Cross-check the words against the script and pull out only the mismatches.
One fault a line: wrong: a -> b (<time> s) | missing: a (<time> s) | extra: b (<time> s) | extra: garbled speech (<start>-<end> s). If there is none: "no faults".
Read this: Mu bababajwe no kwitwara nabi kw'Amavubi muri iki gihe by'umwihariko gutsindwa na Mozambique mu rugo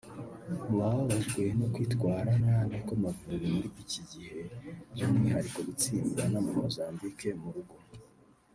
no faults